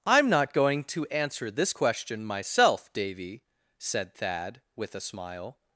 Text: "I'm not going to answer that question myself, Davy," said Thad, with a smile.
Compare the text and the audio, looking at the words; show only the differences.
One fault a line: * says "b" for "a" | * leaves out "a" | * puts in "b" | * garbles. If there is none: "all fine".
* says "this" for "that"